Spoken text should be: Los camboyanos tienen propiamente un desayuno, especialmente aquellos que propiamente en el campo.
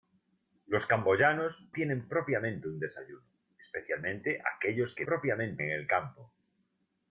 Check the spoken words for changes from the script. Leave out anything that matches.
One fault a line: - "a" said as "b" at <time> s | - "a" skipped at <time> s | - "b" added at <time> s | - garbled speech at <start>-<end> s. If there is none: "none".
none